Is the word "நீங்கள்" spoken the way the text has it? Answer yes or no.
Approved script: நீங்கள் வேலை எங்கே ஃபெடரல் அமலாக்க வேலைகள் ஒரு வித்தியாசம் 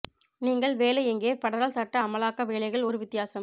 yes